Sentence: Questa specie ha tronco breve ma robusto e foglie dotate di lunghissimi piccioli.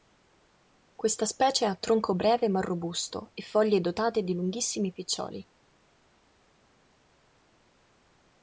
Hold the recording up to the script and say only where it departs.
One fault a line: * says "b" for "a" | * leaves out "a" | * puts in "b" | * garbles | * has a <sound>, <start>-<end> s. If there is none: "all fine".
all fine